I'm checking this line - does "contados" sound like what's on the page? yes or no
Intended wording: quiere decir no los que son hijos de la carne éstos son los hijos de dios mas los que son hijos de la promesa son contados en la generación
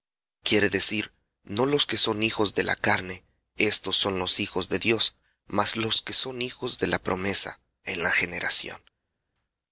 no